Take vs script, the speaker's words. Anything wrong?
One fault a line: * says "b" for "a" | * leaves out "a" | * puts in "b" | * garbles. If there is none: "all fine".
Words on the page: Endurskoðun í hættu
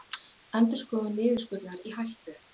* puts in "niðurskurðar"